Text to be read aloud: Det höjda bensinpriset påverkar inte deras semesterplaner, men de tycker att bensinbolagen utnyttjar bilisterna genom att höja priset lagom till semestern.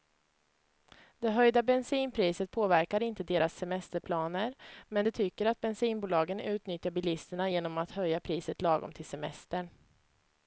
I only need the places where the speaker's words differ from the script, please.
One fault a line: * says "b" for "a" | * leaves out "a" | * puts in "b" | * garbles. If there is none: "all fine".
all fine